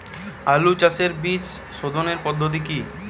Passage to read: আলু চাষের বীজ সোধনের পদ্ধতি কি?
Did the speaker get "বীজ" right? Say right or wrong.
right